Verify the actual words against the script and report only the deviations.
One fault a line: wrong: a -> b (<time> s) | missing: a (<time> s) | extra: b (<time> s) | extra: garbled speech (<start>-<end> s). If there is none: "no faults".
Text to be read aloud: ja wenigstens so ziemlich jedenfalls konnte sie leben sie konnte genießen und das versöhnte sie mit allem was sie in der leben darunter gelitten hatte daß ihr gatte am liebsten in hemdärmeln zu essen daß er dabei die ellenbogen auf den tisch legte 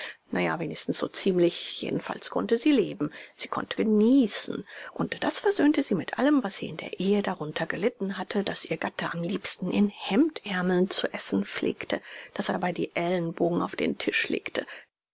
wrong: leben -> ehe (7.0 s)
extra: pflegte (11.5 s)